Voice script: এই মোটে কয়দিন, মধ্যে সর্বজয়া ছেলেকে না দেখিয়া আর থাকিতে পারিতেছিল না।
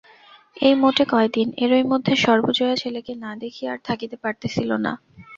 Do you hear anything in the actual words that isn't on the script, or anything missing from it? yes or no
yes